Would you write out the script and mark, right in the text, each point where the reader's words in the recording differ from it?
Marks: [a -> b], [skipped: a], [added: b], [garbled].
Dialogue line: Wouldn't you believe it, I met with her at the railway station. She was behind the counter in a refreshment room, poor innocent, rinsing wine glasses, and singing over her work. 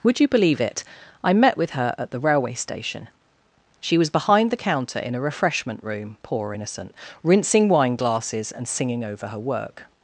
[Wouldn't -> Would] you believe it, I met with her at the railway station. She was behind the counter in a refreshment room, poor innocent, rinsing wine glasses, and singing over her work.